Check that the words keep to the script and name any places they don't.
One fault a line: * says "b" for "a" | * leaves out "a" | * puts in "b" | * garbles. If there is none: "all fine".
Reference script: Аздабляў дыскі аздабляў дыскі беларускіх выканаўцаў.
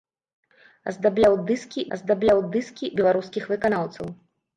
all fine